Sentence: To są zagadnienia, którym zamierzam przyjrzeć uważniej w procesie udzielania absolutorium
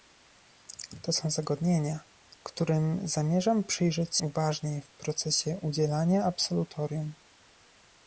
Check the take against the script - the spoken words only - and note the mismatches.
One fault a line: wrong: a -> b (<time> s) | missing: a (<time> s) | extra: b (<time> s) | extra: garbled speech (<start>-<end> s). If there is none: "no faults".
no faults